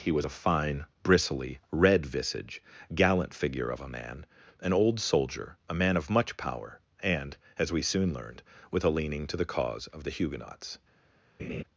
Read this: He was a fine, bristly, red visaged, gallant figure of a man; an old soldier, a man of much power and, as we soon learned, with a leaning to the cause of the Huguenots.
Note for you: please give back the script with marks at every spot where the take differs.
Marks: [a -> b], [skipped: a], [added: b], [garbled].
He was a fine, bristly, red [visaged, -> visage] gallant figure of a man; an old soldier, a man of much power and, as we soon learned, with a leaning to the cause of the Huguenots.